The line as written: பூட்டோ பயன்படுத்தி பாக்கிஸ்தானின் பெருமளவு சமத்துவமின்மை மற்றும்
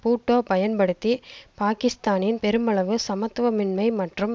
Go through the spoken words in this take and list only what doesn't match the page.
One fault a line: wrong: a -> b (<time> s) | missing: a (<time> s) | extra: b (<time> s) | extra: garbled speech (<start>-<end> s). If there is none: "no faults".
no faults